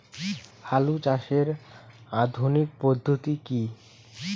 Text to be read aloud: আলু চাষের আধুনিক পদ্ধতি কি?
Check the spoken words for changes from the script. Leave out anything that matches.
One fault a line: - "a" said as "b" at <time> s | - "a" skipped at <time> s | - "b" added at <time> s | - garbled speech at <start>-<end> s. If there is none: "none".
none